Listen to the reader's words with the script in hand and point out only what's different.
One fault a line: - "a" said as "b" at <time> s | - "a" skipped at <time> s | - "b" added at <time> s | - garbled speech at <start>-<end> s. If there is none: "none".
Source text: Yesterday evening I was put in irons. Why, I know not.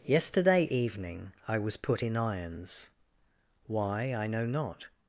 none